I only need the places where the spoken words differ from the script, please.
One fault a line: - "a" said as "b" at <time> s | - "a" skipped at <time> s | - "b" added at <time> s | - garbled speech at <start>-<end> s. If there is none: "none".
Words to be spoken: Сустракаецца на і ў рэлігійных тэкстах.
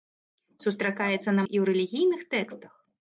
none